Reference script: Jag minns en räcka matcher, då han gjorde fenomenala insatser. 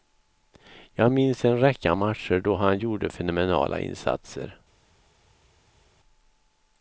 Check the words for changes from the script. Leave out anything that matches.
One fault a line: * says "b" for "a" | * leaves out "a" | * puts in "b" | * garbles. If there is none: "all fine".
all fine